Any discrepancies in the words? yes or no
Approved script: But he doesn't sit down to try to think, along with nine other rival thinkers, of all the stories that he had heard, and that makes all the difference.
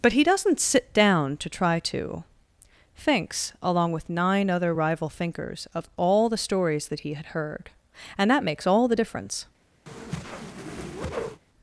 yes